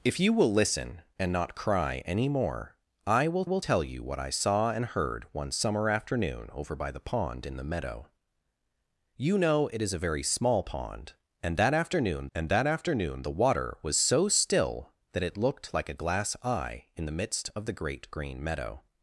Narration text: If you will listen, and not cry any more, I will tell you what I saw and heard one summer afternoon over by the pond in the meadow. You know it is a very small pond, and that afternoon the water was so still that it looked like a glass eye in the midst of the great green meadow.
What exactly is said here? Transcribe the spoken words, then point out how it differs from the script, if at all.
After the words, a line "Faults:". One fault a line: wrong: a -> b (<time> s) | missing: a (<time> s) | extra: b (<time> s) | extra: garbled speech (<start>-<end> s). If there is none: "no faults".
If you will listen, and not cry any more, I will will tell you what I saw and heard one summer afternoon over by the pond in the meadow. You know it is a very small pond, and that afternoon and that afternoon the water was so still that it looked like a glass eye in the midst of the great green meadow.
Faults:
extra: will (3.4 s)
extra: and that afternoon (12.3 s)